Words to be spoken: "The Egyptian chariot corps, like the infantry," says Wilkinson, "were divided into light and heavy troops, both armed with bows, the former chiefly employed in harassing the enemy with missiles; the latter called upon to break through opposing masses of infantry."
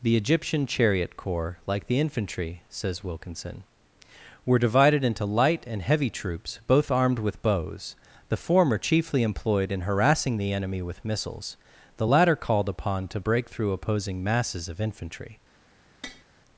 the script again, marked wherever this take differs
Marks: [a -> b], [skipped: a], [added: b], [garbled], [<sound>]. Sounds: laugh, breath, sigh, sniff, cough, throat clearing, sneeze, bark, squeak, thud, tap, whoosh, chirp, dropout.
"The Egyptian chariot corps, like the infantry," says Wilkinson, "were divided into light and heavy troops, both armed with bows, the former chiefly employed in harassing the enemy with missiles; the latter called upon to break through opposing masses of infantry." [tap]